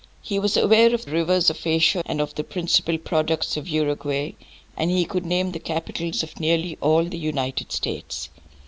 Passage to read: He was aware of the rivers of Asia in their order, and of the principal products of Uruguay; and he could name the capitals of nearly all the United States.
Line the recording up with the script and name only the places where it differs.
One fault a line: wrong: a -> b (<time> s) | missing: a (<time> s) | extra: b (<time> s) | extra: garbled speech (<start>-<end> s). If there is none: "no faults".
missing: the (1.1 s)
missing: in their order (2.0 s)